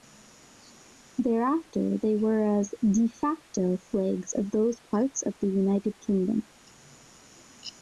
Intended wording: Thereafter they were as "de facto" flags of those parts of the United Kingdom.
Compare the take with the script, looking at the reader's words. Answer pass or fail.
pass